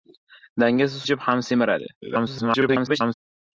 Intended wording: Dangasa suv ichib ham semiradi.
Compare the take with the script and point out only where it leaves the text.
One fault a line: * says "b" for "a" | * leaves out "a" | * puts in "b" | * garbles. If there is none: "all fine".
* leaves out "suv"
* garbles